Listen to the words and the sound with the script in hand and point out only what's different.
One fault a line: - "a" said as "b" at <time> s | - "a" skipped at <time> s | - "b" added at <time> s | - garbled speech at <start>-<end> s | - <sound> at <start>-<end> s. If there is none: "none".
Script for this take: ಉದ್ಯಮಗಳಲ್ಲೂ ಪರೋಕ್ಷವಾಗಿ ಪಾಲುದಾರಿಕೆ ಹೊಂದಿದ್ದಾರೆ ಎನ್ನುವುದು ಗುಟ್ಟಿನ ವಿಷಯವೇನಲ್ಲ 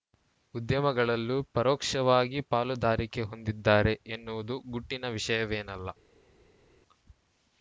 none